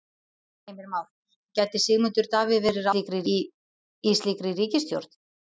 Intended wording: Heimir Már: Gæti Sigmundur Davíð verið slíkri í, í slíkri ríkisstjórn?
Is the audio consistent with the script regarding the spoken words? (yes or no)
yes